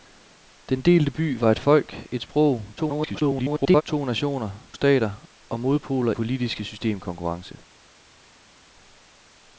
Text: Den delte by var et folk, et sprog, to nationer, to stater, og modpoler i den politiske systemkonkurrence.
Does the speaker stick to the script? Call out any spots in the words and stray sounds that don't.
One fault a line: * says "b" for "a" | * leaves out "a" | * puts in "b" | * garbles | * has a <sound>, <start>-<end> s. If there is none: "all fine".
* garbles
* leaves out "to"
* leaves out "i den"